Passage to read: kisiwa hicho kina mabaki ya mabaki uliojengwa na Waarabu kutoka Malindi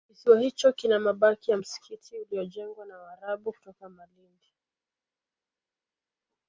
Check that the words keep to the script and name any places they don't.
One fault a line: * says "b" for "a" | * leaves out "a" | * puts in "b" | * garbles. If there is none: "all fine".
* says "msikiti" for "mabaki"